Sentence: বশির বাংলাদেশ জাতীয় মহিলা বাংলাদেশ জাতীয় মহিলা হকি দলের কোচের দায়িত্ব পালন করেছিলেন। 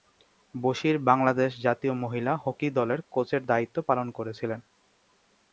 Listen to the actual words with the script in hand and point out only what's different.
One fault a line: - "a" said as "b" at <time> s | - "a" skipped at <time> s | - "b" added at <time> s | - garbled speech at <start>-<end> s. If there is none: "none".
- "বাংলাদেশ জাতীয় মহিলা" skipped at 2.3 s